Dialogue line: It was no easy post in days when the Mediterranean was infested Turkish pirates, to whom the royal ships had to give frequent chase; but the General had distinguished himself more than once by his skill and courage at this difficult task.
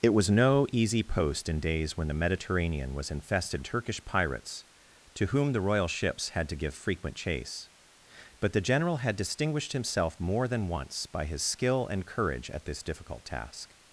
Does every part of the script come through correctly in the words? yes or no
yes